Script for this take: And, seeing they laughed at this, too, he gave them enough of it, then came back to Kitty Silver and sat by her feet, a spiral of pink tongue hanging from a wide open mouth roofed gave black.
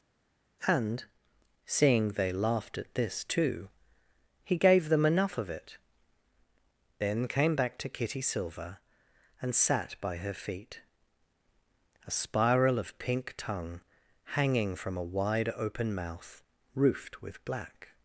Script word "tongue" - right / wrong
right